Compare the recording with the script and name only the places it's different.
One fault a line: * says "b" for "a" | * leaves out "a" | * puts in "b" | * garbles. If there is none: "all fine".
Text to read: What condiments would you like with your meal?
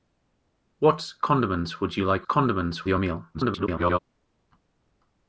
* says "condiments" for "with"
* garbles